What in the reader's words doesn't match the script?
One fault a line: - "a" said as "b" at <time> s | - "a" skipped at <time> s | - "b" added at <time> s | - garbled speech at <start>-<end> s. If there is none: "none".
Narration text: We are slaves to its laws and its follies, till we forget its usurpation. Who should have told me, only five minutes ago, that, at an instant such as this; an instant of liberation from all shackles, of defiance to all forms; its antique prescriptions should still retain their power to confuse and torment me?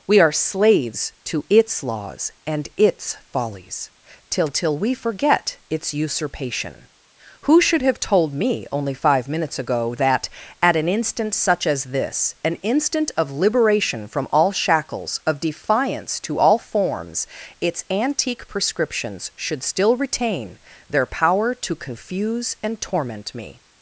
- "till" added at 4.5 s